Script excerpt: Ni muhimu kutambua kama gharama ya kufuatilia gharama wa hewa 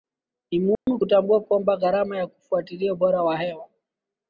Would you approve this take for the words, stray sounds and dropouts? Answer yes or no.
no